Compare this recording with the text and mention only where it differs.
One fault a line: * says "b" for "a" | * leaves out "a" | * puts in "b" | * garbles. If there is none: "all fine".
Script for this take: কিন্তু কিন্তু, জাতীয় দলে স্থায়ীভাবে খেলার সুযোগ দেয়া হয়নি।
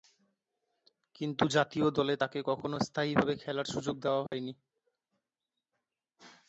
* leaves out "কিন্তু"
* puts in "তাকে কখনো"